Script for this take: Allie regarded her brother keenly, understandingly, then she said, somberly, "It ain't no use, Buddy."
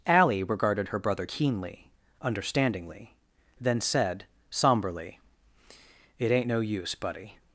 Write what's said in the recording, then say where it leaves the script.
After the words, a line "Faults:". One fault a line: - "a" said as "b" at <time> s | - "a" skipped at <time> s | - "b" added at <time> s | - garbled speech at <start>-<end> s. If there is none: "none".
Allie regarded her brother keenly, understandingly, then said, somberly, "It ain't no use, Buddy."
Faults:
- "she" skipped at 3.8 s